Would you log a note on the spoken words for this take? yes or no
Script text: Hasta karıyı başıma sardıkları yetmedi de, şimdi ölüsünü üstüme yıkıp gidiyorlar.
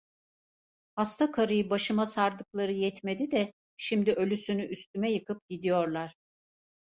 no